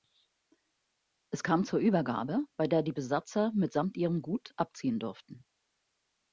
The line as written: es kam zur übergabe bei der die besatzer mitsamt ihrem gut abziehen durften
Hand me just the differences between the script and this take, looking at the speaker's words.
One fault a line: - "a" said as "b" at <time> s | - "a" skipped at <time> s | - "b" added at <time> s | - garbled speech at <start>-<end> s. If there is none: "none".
none